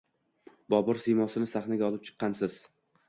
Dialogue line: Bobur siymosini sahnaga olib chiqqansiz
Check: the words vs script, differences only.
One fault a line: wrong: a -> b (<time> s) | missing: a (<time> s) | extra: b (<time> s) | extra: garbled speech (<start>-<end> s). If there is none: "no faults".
no faults